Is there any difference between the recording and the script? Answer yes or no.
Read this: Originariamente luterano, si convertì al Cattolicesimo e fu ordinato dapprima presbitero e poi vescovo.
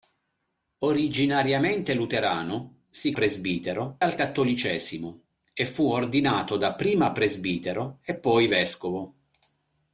yes